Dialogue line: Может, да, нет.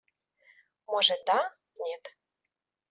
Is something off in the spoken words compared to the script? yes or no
no